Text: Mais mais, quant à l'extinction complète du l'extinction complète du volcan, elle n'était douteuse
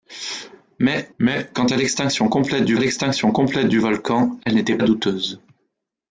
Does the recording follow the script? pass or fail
pass